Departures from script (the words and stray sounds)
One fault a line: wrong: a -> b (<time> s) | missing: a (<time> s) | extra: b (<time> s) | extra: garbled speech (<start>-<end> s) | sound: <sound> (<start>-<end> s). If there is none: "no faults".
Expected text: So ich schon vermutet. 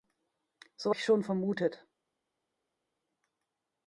no faults